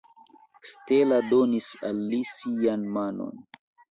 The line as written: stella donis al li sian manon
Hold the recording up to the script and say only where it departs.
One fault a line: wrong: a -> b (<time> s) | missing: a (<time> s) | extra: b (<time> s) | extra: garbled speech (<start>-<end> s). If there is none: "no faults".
no faults